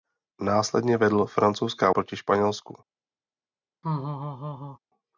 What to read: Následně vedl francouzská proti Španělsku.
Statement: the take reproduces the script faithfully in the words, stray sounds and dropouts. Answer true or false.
false